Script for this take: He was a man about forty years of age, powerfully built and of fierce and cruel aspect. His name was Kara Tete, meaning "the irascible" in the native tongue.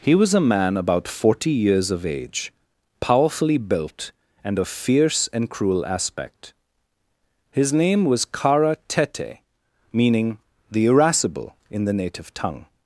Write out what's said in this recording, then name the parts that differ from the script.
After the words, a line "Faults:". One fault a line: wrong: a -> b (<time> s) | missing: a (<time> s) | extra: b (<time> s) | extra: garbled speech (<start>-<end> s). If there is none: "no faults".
He was a man about forty years of age, powerfully built and of fierce and cruel aspect. His name was Kara Tete, meaning "the irascible" in the native tongue.
Faults:
no faults